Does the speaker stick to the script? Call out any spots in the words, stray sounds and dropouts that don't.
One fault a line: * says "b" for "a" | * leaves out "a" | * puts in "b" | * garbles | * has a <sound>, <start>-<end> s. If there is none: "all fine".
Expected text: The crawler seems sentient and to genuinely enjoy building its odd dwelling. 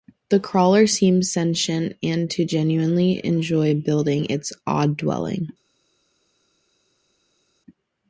all fine